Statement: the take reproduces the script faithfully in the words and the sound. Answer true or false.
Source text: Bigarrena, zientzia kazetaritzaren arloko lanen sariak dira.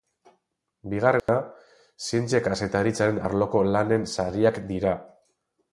false